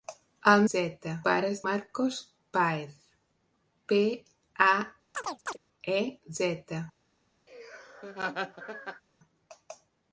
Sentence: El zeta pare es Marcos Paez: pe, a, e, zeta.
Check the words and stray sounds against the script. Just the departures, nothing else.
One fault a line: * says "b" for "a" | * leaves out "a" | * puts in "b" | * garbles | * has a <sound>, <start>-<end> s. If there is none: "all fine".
* has a chirp, 5.1-5.6 s
* has a laugh, 7.5-9.0 s